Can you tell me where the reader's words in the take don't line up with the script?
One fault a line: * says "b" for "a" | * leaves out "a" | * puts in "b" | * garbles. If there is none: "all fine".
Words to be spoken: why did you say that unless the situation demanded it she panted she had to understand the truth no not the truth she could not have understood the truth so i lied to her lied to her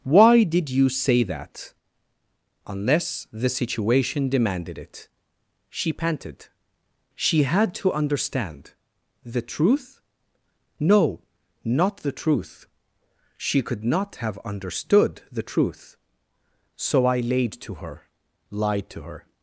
* says "laid" for "lied"